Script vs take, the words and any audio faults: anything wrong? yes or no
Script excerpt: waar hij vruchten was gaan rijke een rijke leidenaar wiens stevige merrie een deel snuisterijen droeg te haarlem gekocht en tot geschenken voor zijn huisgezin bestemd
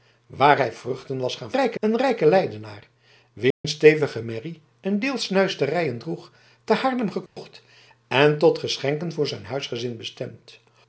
yes